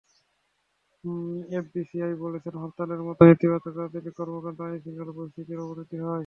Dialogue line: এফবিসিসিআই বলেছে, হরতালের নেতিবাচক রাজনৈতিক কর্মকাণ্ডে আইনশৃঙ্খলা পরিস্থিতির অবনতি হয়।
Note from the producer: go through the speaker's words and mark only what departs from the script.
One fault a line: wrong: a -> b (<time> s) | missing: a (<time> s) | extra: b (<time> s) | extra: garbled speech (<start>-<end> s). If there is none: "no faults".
extra: মতো (3.1 s)